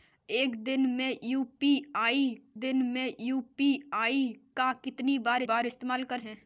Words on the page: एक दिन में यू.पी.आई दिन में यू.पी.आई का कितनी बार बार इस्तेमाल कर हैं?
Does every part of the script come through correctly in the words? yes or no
yes